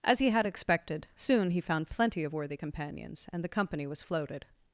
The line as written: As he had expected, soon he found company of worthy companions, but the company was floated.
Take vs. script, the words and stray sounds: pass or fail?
fail